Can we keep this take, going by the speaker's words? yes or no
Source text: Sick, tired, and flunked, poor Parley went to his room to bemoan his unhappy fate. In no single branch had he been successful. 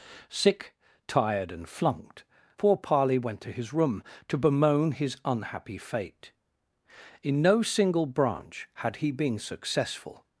yes